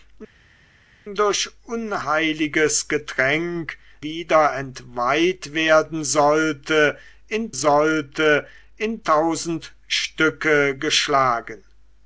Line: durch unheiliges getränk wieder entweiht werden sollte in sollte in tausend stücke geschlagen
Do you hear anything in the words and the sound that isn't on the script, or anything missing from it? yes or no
no